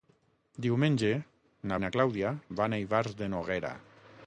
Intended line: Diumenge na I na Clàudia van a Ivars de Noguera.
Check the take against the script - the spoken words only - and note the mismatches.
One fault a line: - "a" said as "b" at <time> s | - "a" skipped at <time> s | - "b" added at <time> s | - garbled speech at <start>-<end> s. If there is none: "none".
none